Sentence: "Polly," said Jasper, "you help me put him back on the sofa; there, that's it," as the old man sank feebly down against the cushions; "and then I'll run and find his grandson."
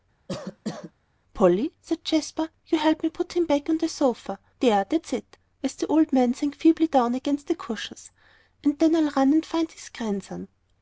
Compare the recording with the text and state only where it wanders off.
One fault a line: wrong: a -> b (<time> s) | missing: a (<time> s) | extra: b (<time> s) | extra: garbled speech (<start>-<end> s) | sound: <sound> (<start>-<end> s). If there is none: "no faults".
sound: cough (0.3-0.9 s)